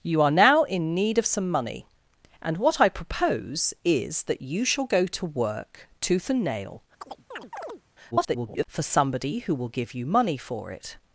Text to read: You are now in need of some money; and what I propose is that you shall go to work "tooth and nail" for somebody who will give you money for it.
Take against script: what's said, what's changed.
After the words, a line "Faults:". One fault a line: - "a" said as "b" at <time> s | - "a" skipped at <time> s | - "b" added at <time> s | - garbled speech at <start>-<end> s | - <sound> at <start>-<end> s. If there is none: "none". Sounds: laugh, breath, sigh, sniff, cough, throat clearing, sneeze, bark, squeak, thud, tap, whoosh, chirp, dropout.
You are now in need of some money; and what I propose is that you shall go to work "tooth and nail" [garbled] for somebody who will give you money for it.
Faults:
- chirp at 7.0-7.8 s
- garbled speech at 8.1-8.7 s